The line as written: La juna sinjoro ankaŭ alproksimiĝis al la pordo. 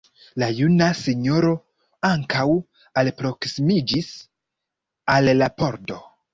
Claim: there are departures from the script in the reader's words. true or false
false